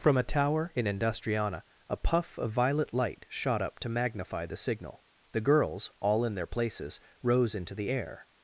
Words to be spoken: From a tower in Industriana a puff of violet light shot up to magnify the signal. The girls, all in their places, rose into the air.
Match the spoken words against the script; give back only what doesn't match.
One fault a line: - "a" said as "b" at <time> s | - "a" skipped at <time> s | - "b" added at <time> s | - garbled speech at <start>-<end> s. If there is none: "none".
none